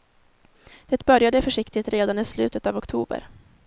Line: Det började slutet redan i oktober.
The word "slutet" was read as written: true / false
false